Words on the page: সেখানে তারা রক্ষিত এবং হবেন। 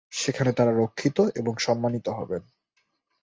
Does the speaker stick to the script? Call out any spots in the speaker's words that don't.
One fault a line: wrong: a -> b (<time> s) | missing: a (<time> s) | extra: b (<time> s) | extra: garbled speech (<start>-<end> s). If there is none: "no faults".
extra: সম্মানিত (1.6 s)